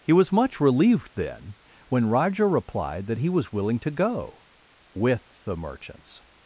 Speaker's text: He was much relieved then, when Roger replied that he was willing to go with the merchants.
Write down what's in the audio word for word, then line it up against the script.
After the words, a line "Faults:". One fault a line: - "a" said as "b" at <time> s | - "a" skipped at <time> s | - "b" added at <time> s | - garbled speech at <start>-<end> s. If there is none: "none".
He was much relieved then, when Roger replied that he was willing to go with the merchants.
Faults:
none